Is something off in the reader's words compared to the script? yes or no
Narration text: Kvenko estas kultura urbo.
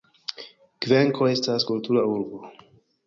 no